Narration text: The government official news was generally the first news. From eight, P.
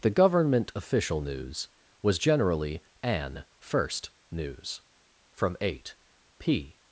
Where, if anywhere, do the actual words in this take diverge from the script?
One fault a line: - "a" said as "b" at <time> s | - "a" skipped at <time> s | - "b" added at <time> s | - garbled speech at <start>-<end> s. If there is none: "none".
- "the" said as "an" at 3.0 s